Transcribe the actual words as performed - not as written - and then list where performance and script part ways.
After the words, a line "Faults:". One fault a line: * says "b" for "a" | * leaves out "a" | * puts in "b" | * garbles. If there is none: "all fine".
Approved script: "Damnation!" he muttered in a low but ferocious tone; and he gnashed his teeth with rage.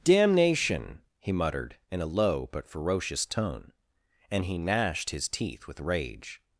"Damnation!" he muttered in a low but ferocious tone; and he gnashed his teeth with rage.
Faults:
all fine